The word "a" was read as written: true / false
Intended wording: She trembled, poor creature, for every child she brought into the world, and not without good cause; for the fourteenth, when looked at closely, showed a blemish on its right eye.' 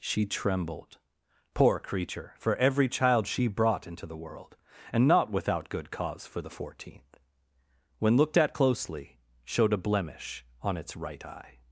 true